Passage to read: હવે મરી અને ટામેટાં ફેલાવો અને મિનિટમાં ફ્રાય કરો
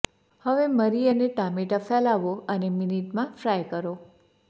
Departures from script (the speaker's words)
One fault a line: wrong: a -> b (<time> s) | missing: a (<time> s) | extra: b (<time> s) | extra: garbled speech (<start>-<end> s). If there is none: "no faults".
no faults